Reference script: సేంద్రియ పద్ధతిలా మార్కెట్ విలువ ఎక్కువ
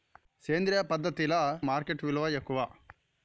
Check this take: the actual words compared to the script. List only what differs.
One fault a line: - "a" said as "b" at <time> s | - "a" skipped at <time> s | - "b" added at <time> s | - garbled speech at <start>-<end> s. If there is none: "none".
none